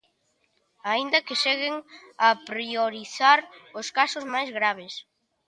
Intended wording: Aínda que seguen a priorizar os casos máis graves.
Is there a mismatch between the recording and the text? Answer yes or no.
no